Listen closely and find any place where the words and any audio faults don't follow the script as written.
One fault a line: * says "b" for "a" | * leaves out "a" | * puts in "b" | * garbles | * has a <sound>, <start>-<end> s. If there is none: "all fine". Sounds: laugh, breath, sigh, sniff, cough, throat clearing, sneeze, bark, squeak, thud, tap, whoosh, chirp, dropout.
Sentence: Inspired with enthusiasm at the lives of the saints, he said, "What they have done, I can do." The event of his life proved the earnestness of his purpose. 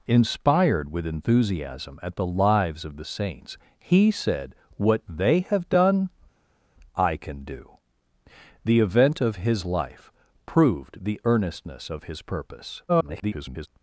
* garbles